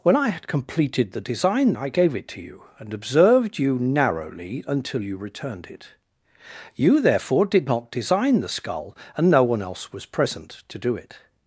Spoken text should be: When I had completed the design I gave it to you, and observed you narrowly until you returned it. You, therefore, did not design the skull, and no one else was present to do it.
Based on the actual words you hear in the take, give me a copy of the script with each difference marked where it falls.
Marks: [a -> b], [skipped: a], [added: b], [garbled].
When I had completed the design I gave it to you, and observed you narrowly until you returned it. You, therefore, did not design the skull, and no one else was present to do it.